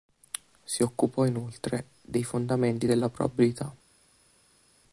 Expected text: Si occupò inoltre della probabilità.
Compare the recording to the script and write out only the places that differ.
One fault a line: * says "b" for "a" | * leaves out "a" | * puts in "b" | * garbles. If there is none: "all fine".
* puts in "dei fondamenti"